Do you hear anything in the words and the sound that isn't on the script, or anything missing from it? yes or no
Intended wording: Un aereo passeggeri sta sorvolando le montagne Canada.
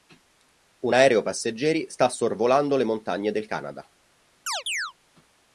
yes